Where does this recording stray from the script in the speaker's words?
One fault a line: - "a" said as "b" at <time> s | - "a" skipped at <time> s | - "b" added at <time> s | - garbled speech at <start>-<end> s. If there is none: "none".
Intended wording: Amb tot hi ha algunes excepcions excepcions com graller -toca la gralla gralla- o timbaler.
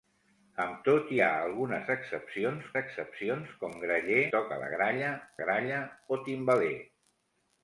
none